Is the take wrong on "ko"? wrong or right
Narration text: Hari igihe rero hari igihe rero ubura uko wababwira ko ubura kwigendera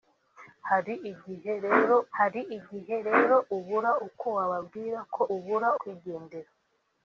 right